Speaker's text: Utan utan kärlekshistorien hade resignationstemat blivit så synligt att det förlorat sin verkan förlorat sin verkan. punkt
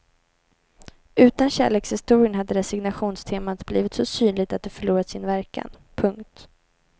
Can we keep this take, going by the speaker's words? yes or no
no